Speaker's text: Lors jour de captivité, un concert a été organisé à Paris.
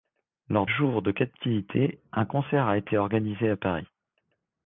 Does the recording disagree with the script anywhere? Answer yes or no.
no